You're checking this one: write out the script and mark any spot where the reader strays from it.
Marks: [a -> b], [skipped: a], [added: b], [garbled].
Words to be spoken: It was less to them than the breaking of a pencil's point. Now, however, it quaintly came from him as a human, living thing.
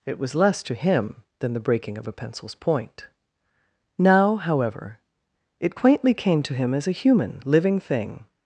It was less to [them -> him] than the breaking of a pencil's point. Now, however, it quaintly came [from -> to] him as a human, living thing.